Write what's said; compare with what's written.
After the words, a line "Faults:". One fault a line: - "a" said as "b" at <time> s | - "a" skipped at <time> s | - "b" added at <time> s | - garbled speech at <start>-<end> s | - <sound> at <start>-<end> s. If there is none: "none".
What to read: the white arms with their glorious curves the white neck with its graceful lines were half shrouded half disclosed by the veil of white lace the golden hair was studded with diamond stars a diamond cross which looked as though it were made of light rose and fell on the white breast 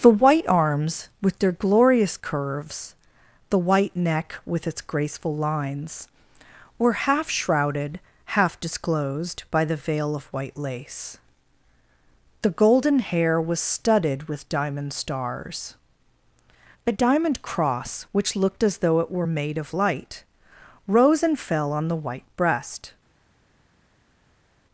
the white arms with their glorious curves the white neck with its graceful lines were half shrouded half disclosed by the veil of white lace the golden hair was studded with diamond stars a diamond cross which looked as though it were made of light rose and fell on the white breast
Faults:
none